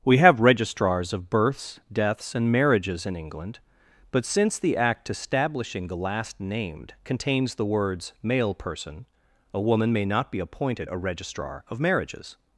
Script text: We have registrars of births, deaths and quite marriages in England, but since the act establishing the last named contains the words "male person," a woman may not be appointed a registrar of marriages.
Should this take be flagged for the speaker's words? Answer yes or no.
yes